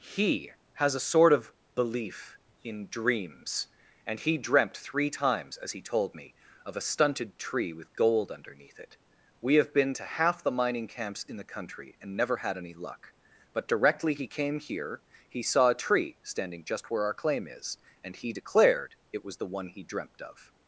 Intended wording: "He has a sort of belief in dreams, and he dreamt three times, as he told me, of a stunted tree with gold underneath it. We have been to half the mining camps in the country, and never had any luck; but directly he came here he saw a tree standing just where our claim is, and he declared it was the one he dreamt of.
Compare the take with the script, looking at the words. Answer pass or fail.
pass